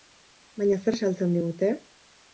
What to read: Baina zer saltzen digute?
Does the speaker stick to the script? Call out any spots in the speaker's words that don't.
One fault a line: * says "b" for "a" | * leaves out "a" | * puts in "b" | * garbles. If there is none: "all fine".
all fine